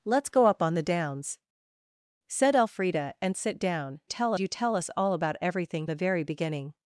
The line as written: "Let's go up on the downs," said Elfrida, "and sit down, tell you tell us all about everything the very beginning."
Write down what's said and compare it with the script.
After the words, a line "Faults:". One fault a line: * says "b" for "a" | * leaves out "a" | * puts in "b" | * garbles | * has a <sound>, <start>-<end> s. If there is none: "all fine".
"Let's go up on the downs," said Elfrida, "and sit down, tell you tell us all about everything the very beginning."
Faults:
all fine